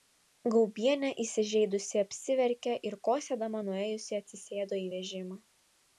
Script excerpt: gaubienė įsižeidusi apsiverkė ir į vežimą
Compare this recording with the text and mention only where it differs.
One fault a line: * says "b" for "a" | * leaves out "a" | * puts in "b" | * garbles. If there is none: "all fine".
* puts in "kosėdama nuėjusi atsisėdo"